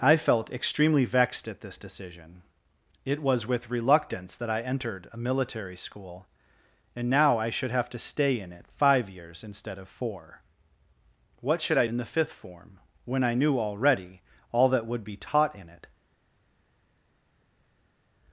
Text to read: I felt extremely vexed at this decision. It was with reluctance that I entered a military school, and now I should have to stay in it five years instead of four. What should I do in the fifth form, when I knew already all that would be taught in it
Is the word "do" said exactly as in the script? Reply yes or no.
no